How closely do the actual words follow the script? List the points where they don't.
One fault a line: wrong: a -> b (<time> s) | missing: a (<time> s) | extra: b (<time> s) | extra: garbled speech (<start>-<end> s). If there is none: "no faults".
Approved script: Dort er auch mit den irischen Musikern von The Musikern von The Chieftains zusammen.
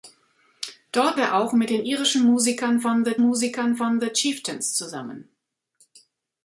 no faults